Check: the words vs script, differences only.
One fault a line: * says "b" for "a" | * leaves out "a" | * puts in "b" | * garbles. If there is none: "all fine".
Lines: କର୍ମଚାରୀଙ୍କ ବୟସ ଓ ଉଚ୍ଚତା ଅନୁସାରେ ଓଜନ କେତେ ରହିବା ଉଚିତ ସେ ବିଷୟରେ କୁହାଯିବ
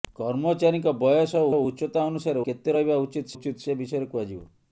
* puts in "ଓ"
* leaves out "ଓଜନ"
* puts in "ଉଚିତ"